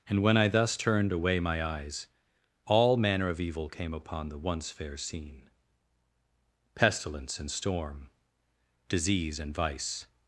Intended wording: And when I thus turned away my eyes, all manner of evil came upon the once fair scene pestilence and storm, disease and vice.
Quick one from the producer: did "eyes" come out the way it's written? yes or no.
yes